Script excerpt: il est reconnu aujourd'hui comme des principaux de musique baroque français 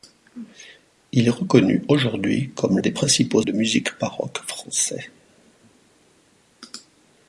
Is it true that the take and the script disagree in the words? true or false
false